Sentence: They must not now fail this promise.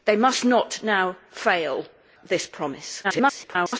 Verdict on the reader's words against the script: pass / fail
fail